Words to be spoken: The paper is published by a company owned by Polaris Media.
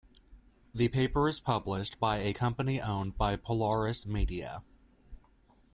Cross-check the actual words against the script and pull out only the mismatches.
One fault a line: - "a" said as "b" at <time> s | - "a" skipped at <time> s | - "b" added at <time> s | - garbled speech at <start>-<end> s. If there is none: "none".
none